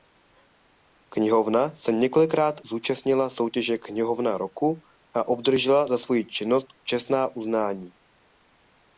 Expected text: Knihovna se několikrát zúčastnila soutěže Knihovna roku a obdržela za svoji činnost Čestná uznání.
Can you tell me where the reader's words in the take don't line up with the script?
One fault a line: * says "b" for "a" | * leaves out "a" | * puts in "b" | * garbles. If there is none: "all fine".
all fine